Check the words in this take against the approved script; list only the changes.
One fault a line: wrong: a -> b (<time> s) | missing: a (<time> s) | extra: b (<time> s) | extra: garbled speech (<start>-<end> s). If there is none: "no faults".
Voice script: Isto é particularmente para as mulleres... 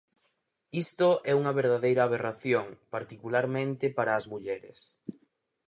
extra: unha verdadeira aberración (1.4 s)